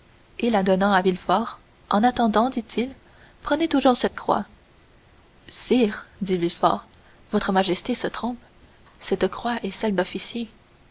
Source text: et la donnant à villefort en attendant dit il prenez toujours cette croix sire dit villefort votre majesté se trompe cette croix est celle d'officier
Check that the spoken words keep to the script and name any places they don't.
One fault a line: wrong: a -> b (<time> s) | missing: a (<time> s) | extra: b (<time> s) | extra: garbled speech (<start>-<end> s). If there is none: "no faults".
no faults